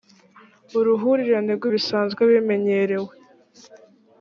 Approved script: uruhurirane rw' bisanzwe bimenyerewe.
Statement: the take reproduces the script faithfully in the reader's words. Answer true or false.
true